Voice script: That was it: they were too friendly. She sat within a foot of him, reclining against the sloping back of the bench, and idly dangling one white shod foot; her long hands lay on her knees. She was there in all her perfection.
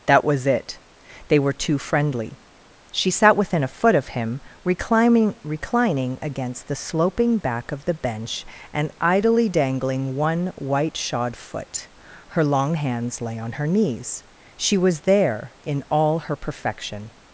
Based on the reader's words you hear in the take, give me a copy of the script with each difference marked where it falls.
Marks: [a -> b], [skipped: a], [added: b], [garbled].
That was it: they were too friendly. She sat within a foot of him, reclining [added: reclining] against the sloping back of the bench, and idly dangling one white shod foot; her long hands lay on her knees. She was there in all her perfection.